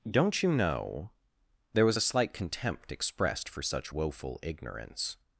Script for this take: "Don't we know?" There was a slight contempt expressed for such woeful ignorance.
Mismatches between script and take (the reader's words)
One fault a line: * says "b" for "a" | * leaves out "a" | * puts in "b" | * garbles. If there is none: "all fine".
* says "you" for "we"